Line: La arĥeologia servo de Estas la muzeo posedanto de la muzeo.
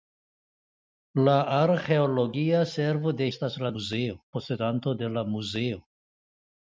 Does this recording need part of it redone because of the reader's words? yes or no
no